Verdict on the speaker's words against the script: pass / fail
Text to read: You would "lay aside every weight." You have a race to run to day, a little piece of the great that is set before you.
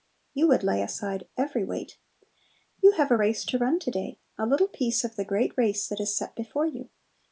fail